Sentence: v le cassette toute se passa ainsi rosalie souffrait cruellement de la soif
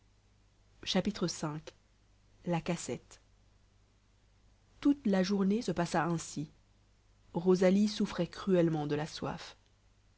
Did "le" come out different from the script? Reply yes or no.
yes